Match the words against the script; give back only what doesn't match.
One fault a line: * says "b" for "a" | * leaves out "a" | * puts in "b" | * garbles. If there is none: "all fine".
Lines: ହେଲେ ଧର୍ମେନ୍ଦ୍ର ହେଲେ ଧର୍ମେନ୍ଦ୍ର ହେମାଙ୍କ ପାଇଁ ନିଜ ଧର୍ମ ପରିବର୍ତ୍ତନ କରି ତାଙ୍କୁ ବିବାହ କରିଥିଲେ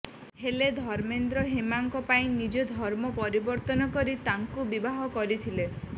* leaves out "ହେଲେ ଧର୍ମେନ୍ଦ୍ର"